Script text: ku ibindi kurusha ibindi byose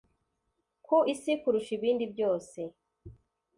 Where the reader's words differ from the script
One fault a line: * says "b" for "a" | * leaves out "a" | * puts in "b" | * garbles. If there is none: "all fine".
* says "isi" for "ibindi"